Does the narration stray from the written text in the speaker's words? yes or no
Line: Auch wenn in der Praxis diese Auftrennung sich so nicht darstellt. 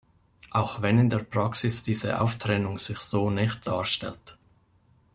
no